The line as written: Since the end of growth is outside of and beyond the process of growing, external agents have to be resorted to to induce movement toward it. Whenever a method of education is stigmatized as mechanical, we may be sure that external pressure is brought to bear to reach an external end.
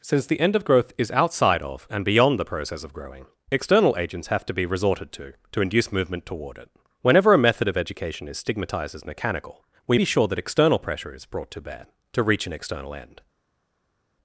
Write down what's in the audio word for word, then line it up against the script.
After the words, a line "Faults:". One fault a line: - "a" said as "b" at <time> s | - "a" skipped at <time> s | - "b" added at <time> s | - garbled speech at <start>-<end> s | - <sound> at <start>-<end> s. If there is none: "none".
Since the end of growth is outside of and beyond the process of growing, external agents have to be resorted to to induce movement toward it. Whenever a method of education is stigmatized as mechanical, we be sure that external pressure is brought to bear to reach an external end.
Faults:
- "may" skipped at 10.0 s